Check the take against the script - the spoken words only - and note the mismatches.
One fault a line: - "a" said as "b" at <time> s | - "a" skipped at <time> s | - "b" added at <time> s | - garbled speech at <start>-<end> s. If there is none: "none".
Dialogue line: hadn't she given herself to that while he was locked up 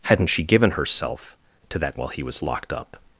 none